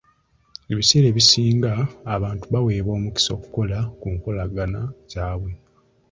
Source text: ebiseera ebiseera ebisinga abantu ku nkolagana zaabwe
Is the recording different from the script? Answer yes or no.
yes